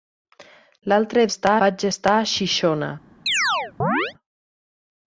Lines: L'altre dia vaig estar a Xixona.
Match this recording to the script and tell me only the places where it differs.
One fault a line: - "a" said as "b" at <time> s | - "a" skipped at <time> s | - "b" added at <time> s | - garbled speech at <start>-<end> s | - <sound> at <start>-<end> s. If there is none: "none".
- "dia" said as "estar" at 1.3 s
- chirp at 3.3-4.1 s